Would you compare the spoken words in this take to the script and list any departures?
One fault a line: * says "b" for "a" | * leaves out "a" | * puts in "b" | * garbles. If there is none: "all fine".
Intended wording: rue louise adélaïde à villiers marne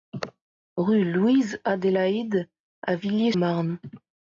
all fine